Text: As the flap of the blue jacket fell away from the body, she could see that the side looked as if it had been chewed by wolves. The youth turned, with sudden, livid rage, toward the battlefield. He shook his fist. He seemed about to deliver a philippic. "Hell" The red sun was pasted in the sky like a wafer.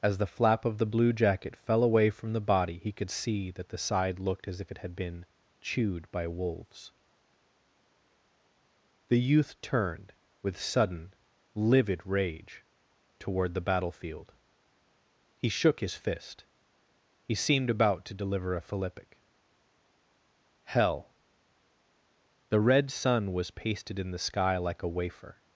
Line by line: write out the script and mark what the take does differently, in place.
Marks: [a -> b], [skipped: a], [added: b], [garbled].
As the flap of the blue jacket fell away from the body, [she -> he] could see that the side looked as if it had been chewed by wolves. The youth turned, with sudden, livid rage, toward the battlefield. He shook his fist. He seemed about to deliver a philippic. "Hell" The red sun was pasted in the sky like a wafer.